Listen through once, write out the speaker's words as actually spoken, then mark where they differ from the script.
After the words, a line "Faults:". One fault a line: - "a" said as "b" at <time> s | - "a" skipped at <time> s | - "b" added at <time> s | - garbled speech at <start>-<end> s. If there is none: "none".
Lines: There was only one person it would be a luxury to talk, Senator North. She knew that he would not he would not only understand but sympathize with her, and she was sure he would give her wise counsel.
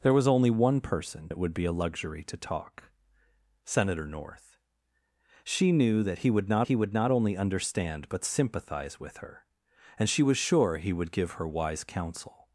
There was only one person it would be a luxury to talk, Senator North. She knew that he would not he would not only understand but sympathize with her, and she was sure he would give her wise counsel.
Faults:
none